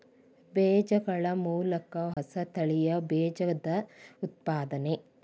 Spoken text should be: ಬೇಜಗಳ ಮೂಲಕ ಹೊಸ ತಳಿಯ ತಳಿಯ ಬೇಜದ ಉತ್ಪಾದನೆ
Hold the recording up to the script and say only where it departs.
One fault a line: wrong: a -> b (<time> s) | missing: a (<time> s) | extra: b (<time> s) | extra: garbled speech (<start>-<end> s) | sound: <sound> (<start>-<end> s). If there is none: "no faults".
sound: dropout (2.1-2.2 s)
missing: ತಳಿಯ (3.0 s)